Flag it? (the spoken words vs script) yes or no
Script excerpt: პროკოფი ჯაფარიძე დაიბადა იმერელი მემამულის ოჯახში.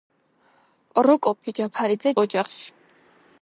yes